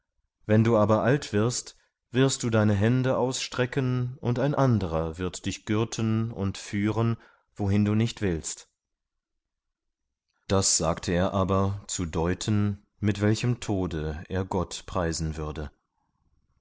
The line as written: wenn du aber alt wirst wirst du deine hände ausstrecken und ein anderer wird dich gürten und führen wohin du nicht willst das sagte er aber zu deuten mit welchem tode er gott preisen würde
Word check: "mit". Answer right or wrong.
right